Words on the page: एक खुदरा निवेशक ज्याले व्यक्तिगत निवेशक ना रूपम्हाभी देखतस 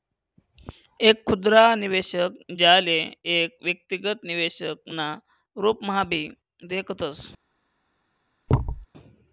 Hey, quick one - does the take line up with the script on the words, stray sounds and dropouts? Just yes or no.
no